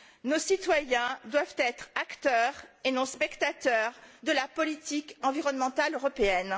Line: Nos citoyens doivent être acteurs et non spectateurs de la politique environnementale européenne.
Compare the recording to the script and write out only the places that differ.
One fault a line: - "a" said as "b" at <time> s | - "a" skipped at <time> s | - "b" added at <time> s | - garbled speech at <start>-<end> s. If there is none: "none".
none